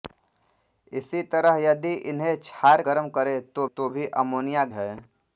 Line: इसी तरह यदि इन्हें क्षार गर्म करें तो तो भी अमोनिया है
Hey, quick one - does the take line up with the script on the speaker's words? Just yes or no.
yes